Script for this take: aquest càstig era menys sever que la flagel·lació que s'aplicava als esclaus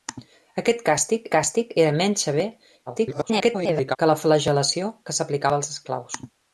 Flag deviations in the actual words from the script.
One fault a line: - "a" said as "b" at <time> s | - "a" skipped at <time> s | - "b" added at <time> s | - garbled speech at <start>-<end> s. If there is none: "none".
- "càstig" added at 1.3 s
- garbled speech at 2.9-4.0 s